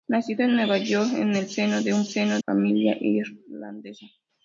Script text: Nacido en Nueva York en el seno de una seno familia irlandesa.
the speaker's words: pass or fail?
pass